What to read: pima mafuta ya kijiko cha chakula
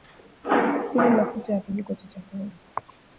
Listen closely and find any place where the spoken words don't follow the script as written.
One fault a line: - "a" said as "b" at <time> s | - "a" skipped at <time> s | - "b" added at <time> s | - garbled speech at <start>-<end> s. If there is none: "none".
none